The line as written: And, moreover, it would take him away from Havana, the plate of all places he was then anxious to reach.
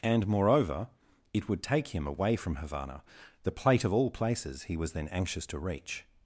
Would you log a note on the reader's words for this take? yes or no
no